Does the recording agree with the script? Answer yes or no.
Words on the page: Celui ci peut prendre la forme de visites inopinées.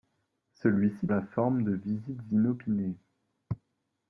no